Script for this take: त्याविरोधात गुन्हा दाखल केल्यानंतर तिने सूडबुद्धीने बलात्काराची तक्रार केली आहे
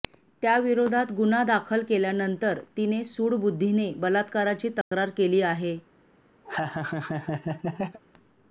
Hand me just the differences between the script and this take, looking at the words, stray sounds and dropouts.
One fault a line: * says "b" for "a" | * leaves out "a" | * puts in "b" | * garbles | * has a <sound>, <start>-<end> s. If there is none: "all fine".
* has a dropout, 4.8-4.9 s
* has a laugh, 6.4-8.0 s